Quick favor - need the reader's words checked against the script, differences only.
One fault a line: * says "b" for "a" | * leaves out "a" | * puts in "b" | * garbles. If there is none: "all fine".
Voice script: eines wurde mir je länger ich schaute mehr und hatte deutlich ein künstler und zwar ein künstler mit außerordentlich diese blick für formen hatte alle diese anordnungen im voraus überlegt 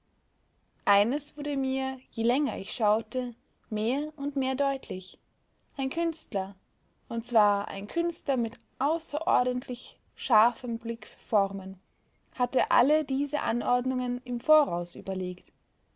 * says "mehr" for "hatte"
* says "scharfem" for "diese"